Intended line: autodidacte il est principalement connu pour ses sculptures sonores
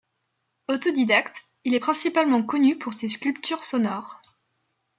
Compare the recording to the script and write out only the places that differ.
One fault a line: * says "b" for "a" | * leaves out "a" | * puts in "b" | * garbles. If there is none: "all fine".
all fine